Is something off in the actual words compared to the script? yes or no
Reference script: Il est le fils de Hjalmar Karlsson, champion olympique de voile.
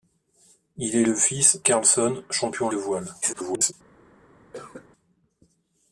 yes